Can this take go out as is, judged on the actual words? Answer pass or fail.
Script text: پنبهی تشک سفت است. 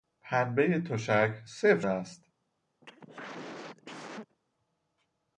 pass